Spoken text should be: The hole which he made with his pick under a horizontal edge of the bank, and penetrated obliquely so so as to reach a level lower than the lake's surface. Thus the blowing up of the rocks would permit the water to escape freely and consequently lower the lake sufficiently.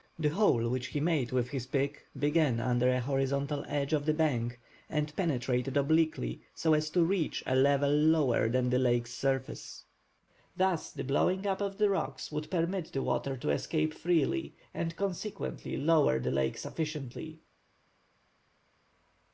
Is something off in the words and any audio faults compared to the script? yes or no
yes